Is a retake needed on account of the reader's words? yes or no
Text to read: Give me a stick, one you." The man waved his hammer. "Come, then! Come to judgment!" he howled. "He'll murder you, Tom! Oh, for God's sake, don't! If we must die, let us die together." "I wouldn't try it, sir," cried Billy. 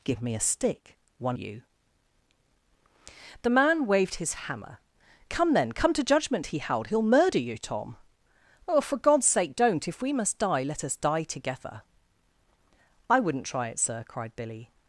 no